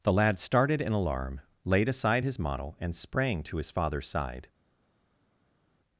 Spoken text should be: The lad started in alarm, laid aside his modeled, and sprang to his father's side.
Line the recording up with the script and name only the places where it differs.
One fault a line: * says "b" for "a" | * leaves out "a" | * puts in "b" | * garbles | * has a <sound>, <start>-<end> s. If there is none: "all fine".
* says "model" for "modeled"